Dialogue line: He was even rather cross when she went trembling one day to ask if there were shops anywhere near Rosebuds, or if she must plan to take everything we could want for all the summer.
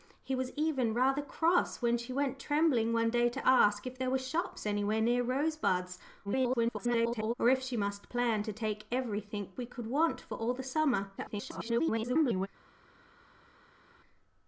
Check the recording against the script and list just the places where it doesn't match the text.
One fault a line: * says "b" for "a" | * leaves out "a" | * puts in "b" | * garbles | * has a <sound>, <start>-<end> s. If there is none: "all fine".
* garbles
* garbles